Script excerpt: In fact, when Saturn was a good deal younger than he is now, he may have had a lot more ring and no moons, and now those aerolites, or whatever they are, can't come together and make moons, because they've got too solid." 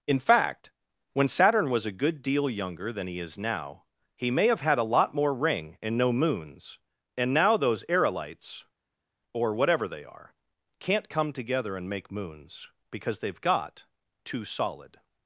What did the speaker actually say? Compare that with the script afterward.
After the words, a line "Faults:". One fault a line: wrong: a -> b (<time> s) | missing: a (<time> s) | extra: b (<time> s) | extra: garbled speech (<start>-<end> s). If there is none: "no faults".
In fact, when Saturn was a good deal younger than he is now, he may have had a lot more ring and no moons, and now those aerolites, or whatever they are, can't come together and make moons, because they've got too solid."
Faults:
no faults